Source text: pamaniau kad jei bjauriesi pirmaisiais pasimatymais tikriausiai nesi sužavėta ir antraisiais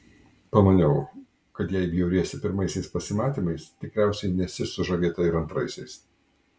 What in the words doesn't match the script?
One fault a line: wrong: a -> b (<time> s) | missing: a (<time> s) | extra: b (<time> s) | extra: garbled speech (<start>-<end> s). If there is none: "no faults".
no faults